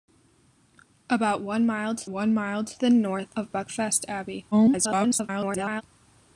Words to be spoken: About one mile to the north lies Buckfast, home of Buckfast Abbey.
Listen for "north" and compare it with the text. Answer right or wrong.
wrong